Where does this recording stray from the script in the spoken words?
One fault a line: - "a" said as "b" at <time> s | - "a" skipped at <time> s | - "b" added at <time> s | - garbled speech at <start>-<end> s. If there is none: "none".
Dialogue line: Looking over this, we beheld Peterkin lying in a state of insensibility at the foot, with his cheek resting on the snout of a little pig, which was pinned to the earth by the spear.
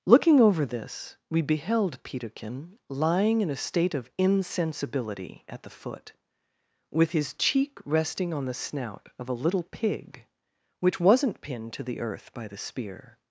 - "was" said as "wasn't" at 11.0 s